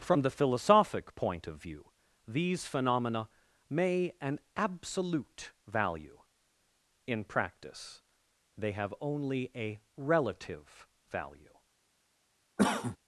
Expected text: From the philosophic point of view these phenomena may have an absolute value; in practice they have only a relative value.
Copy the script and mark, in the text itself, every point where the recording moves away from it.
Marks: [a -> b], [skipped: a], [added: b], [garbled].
From the philosophic point of view these phenomena may [skipped: have] an absolute value; in practice they have only a relative value.